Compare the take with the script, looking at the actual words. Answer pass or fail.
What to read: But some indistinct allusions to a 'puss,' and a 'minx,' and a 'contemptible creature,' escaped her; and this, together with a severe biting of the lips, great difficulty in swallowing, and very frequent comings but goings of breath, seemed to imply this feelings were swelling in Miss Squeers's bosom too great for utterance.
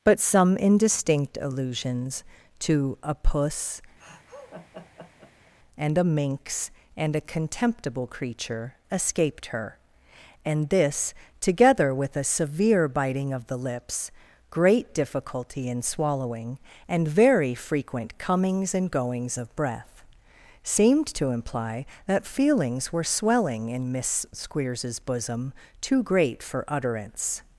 fail